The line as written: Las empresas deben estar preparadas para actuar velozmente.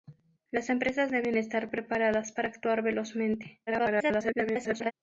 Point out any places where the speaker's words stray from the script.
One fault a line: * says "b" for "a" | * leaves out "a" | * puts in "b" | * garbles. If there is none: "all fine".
* garbles